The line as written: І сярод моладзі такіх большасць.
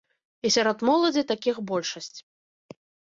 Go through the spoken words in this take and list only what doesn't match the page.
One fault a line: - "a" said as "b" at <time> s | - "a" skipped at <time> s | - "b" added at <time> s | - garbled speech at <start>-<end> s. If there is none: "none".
none